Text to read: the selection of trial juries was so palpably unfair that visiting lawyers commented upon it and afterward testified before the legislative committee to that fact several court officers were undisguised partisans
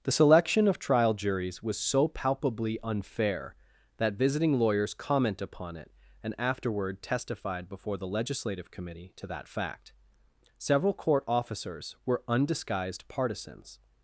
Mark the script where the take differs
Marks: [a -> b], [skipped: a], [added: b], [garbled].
the selection of trial juries was so palpably unfair that visiting lawyers [commented -> comment] upon it and afterward testified before the legislative committee to that fact several court officers were undisguised partisans